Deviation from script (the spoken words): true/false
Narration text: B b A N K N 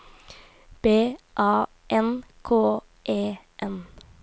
true